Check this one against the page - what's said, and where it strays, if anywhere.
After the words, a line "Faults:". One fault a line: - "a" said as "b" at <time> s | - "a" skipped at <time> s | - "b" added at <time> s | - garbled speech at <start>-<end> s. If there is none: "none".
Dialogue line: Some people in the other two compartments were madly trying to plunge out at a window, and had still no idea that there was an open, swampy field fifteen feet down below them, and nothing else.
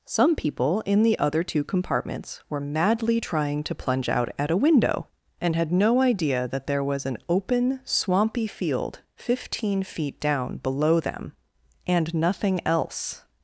Some people in the other two compartments were madly trying to plunge out at a window, and had no idea that there was an open, swampy field fifteen feet down below them, and nothing else.
Faults:
- "still" skipped at 5.7 s